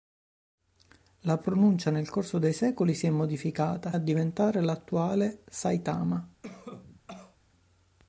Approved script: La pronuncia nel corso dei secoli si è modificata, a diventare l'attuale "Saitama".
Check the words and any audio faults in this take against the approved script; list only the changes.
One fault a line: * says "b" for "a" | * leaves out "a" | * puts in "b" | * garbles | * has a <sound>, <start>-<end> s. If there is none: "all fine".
* has a cough, 6.4-7.4 s